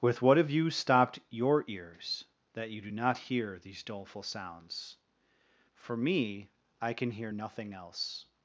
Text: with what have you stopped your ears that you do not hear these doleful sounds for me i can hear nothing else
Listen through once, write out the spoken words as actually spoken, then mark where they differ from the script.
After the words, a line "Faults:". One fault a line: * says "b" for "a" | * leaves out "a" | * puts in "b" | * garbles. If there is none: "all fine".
with what have you stopped your ears that you do not hear these doleful sounds for me i can hear nothing else
Faults:
all fine